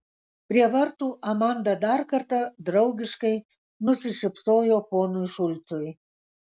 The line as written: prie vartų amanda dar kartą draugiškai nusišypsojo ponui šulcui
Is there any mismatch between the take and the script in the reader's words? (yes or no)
no